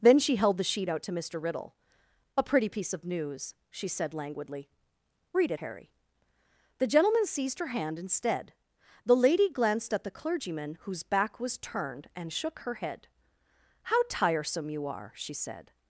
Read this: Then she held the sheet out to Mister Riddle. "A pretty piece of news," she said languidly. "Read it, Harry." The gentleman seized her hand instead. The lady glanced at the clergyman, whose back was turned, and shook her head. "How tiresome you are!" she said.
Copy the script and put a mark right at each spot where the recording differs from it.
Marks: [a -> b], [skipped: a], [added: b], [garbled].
Then she held the sheet out to Mister Riddle. "A pretty piece of news," she said languidly. "Read it, Harry." The gentleman seized her hand instead. The lady glanced at the clergyman, whose back was turned, and shook her head. "How tiresome you are!" she said.